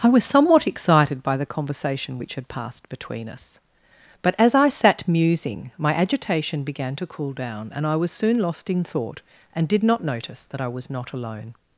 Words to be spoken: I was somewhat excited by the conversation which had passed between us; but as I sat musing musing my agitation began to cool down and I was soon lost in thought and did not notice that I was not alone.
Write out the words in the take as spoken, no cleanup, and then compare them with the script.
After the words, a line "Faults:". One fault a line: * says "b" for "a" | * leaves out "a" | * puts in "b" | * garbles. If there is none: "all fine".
I was somewhat excited by the conversation which had passed between us; but as I sat musing my agitation began to cool down and I was soon lost in thought and did not notice that I was not alone.
Faults:
* leaves out "musing"